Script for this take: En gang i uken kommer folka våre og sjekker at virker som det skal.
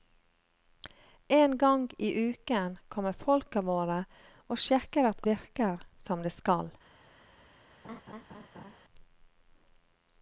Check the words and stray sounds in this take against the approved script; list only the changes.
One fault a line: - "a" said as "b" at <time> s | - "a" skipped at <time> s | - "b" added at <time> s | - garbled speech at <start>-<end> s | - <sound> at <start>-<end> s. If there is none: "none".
- laugh at 7.8-8.8 s